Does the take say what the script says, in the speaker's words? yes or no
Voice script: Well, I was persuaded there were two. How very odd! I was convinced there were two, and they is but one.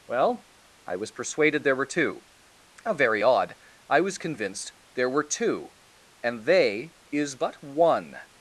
yes